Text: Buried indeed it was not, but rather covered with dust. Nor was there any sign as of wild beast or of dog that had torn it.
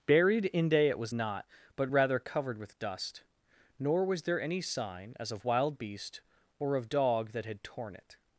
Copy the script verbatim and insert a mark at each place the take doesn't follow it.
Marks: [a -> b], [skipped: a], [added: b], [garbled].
Buried [indeed -> inde] it was not, but rather covered with dust. Nor was there any sign as of wild beast or of dog that had torn it.